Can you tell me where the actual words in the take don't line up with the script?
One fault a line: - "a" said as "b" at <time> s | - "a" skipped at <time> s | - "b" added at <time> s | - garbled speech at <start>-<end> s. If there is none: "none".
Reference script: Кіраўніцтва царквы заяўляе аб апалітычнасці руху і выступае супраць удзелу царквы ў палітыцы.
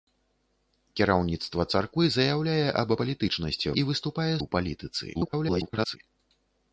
- "руху" skipped at 3.7 s
- "супраць удзелу царквы" skipped at 4.3 s
- garbled speech at 5.1-6.0 s